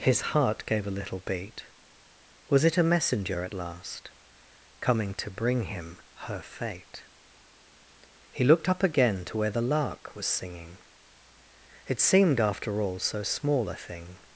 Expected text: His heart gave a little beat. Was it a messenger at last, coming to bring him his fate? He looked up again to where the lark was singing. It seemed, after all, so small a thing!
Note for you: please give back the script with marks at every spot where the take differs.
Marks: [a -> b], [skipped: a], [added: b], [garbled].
His heart gave a little beat. Was it a messenger at last, coming to bring him [his -> her] fate? He looked up again to where the lark was singing. It seemed, after all, so small a thing!